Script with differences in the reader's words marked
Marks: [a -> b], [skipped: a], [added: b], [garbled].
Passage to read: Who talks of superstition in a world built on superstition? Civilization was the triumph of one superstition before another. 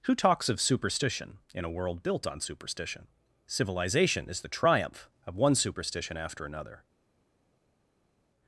Who talks of superstition in a world built on superstition? Civilization [was -> is] the triumph of one superstition [before -> after] another.